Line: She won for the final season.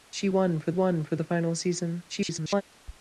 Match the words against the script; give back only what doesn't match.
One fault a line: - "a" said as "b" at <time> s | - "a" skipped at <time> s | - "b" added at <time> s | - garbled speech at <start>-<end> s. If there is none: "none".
- "won for" added at 0.7 s
- garbled speech at 2.1-2.6 s